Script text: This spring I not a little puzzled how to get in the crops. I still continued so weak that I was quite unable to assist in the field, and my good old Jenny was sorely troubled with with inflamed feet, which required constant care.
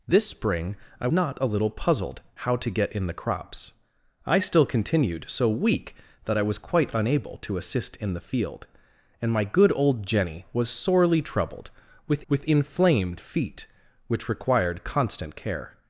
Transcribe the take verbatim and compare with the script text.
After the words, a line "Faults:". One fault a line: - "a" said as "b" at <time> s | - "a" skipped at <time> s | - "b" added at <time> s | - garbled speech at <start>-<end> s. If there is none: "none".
This spring I not a little puzzled how to get in the crops. I still continued so weak that I was quite unable to assist in the field, and my good old Jenny was sorely troubled with with inflamed feet, which required constant care.
Faults:
none